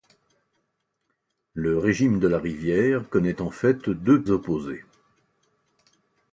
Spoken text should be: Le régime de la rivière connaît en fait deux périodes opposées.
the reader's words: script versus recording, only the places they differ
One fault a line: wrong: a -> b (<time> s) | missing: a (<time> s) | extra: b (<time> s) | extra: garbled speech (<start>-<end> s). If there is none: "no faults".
missing: périodes (4.2 s)